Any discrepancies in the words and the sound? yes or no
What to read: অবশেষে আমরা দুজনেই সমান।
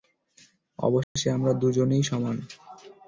yes